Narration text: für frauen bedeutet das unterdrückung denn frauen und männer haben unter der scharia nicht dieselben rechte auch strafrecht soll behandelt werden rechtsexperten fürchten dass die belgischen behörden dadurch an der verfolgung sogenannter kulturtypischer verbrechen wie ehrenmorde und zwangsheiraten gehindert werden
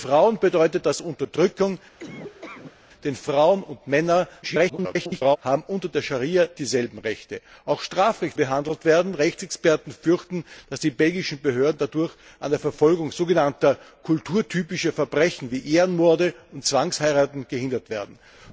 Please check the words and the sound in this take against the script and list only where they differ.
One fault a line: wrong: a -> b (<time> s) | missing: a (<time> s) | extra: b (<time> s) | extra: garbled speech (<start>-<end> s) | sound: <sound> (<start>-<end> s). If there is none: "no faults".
sound: laugh (2.0-2.8 s)
extra: garbled speech (4.4-5.4 s)
missing: nicht (6.5 s)
missing: soll (8.4 s)